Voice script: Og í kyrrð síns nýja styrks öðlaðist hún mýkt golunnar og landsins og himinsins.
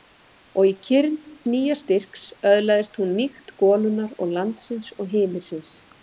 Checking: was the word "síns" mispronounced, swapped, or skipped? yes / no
yes